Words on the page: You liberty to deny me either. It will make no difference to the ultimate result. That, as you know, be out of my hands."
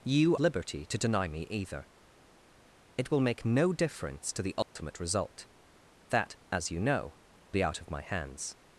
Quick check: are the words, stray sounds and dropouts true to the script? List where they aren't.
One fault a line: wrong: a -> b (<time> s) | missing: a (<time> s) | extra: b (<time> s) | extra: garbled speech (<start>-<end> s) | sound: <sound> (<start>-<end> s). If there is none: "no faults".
sound: dropout (4.6-4.8 s)